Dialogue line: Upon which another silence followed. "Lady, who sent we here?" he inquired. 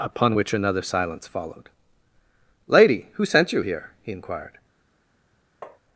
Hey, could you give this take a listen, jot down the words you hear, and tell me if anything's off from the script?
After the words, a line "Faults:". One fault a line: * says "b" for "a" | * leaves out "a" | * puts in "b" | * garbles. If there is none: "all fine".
Upon which another silence followed. "Lady, who sent you here?" he inquired.
Faults:
* says "you" for "we"